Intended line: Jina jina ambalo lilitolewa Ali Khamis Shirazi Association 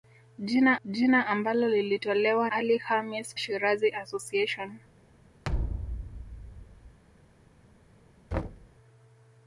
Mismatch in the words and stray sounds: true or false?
true